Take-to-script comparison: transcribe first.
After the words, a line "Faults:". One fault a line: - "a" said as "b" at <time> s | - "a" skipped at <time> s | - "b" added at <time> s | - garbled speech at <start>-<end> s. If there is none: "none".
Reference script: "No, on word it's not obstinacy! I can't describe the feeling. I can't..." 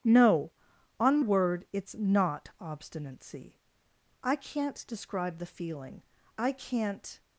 "No, on word it's not obstinacy! I can't describe the feeling. I can't..."
Faults:
none